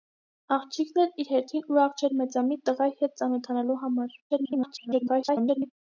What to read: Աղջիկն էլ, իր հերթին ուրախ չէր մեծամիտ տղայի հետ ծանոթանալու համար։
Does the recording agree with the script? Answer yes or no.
no